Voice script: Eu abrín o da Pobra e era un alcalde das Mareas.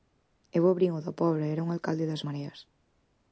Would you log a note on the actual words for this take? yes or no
no